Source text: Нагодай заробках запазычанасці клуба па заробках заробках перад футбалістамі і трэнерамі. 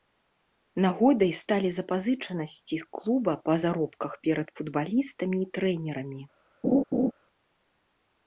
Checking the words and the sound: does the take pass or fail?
fail